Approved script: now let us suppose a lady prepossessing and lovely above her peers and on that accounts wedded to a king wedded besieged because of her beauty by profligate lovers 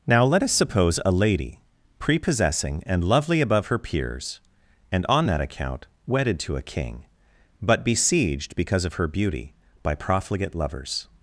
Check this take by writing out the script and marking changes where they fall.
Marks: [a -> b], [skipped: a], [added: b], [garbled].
now let us suppose a lady prepossessing and lovely above her peers and on that [accounts -> account] wedded to a king [wedded -> but] besieged because of her beauty by profligate lovers